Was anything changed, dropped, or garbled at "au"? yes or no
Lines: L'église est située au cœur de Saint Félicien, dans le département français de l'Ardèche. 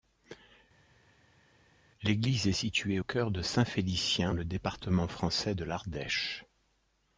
yes